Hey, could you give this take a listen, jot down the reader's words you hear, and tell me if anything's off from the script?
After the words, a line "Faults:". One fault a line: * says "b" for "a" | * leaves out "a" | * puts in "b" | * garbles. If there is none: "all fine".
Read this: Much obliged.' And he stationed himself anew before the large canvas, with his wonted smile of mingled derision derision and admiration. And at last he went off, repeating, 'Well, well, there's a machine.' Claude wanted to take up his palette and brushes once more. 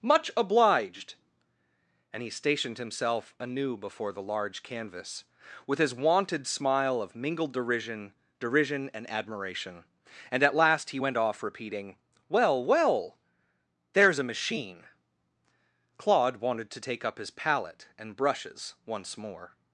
Much obliged.' And he stationed himself anew before the large canvas, with his wonted smile of mingled derision derision and admiration. And at last he went off, repeating, 'Well, well, there's a machine.' Claude wanted to take up his palette and brushes once more.
Faults:
all fine